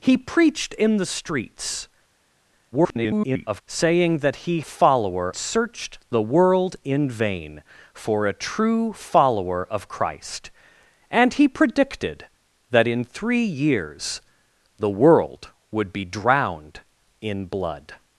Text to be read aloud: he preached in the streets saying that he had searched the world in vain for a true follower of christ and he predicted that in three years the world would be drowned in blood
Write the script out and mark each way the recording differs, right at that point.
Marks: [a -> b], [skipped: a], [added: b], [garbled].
he preached in the streets [garbled] saying that he [had -> follower] searched the world in vain for a true follower of christ and he predicted that in three years the world would be drowned in blood